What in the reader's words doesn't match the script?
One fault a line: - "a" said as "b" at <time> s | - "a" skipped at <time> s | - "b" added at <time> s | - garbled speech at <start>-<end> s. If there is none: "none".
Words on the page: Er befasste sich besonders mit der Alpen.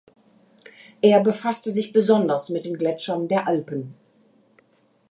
- "den Gletschern" added at 2.6 s